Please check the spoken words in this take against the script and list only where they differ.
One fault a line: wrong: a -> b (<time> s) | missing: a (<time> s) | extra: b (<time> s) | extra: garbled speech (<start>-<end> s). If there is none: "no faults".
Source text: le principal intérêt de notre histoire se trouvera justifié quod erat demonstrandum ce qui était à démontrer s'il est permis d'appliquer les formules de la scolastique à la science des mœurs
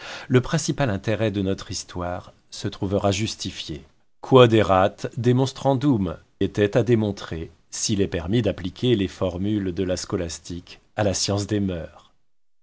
missing: ce qui (6.2 s)